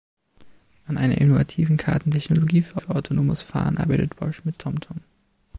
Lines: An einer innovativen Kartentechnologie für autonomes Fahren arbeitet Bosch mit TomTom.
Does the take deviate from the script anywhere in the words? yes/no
yes